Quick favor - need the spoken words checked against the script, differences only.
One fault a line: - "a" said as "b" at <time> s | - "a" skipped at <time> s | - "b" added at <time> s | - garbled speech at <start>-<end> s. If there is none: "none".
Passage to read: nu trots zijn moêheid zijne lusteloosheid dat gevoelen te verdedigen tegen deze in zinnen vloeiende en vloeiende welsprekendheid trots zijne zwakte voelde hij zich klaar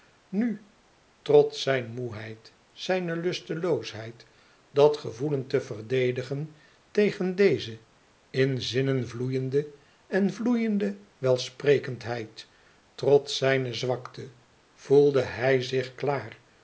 none